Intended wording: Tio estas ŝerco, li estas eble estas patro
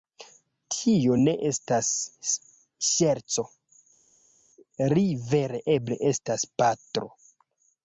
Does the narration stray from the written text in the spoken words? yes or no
yes